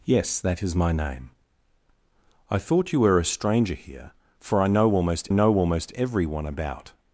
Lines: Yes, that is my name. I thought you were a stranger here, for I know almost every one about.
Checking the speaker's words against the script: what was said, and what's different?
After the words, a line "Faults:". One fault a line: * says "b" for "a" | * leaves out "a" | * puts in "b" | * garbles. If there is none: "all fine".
Yes, that is my name. I thought you were a stranger here, for I know almost know almost every one about.
Faults:
* puts in "know almost"